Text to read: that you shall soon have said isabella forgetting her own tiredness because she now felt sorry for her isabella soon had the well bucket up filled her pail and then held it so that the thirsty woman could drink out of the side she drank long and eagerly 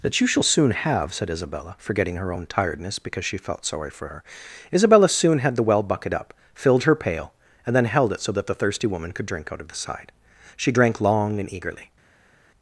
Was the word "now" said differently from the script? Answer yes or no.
yes